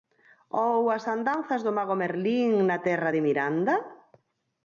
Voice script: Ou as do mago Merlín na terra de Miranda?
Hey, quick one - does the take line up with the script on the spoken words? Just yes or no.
no